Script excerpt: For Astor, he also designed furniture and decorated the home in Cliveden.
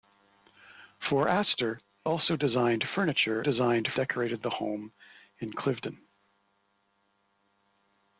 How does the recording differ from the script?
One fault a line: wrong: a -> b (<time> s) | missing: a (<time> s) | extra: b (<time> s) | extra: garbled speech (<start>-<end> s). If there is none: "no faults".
missing: he (1.8 s)
wrong: and -> designed (3.4 s)